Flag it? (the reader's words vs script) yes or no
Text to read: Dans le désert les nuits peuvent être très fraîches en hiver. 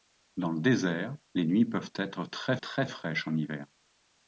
yes